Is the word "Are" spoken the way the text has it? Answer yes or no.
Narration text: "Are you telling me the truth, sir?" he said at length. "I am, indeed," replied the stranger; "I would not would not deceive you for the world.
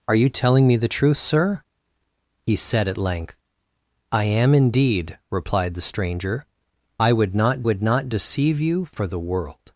yes